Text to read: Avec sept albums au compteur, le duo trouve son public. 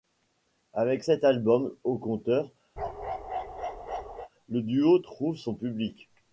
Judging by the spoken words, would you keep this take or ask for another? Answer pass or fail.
pass